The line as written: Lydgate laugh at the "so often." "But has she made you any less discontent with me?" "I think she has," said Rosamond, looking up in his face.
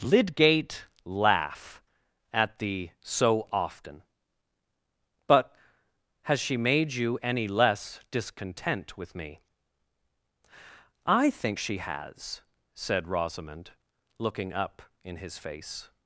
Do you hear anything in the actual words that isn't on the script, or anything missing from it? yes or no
no